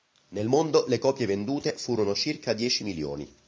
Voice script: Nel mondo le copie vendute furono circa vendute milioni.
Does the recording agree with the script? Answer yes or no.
no